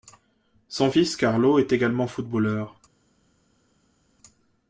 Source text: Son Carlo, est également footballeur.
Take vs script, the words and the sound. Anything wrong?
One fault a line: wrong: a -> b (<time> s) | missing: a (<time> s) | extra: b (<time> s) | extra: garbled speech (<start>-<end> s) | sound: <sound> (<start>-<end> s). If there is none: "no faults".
extra: fils (0.9 s)